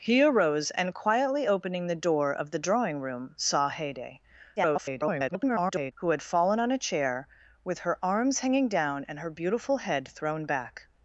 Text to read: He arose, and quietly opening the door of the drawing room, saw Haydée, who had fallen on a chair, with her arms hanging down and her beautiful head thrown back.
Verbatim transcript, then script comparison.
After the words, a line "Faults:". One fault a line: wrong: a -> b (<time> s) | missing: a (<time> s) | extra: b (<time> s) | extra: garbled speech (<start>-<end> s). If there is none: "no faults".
He arose, and quietly opening the door of the drawing room, saw Haydée, [garbled] who had fallen on a chair, with her arms hanging down and her beautiful head thrown back.
Faults:
extra: garbled speech (4.6-5.9 s)